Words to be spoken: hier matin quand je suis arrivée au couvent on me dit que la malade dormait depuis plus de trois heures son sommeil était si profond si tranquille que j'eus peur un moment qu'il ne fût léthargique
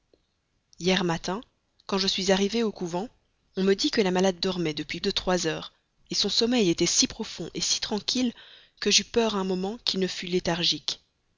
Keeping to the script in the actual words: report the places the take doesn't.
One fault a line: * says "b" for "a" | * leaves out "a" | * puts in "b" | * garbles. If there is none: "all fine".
* leaves out "plus"